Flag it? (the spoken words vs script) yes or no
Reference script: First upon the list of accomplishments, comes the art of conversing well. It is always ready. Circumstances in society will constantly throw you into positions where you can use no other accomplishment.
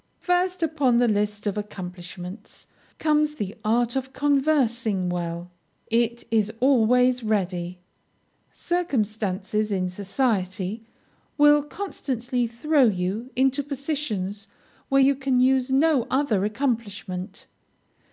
no